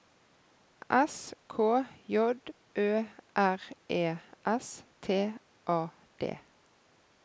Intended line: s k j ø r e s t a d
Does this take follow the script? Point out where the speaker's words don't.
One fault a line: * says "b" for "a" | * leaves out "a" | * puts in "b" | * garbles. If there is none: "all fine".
all fine